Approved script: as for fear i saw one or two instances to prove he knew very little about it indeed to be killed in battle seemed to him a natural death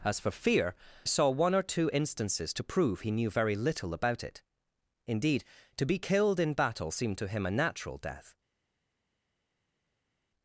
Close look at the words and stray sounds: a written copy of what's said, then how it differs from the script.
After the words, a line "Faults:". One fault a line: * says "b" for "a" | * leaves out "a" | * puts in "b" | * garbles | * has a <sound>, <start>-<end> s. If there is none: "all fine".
as for fear saw one or two instances to prove he knew very little about it indeed to be killed in battle seemed to him a natural death
Faults:
* leaves out "i"